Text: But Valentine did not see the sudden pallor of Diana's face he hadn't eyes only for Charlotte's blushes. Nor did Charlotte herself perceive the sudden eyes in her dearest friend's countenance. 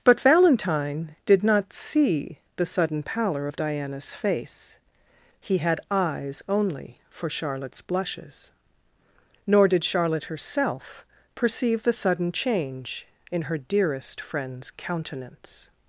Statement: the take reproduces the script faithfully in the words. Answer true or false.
false